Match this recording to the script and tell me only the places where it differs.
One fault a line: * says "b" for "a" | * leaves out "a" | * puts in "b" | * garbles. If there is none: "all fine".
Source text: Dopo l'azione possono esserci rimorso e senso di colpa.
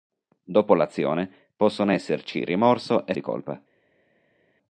* leaves out "senso"